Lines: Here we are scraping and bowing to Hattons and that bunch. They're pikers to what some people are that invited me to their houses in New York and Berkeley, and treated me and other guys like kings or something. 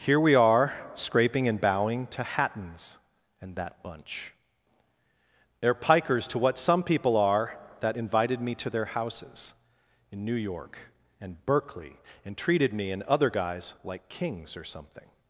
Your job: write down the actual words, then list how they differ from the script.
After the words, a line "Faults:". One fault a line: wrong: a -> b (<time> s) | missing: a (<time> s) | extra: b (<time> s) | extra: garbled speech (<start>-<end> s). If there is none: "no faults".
Here we are scraping and bowing to Hattons and that bunch. They're pikers to what some people are that invited me to their houses in New York and Berkeley, and treated me and other guys like kings or something.
Faults:
no faults